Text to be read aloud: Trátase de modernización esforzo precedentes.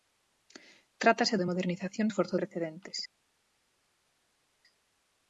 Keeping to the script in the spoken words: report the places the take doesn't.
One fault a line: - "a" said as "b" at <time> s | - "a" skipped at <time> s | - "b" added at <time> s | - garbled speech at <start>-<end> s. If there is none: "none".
none